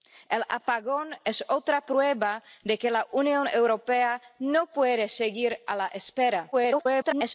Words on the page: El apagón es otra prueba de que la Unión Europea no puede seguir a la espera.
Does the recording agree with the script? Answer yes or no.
no